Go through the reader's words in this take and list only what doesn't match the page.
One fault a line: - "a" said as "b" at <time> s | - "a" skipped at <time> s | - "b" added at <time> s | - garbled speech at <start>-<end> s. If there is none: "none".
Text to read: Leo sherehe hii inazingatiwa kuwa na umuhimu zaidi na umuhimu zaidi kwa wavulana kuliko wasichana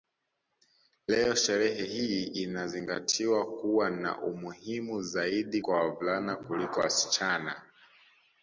- "na umuhimu zaidi" skipped at 5.6 s